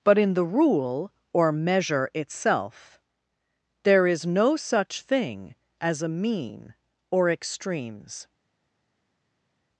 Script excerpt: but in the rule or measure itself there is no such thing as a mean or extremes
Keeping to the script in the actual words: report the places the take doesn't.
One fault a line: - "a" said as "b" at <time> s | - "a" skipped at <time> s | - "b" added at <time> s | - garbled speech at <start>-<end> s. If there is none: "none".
none